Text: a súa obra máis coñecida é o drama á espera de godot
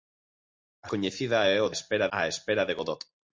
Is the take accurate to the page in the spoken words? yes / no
no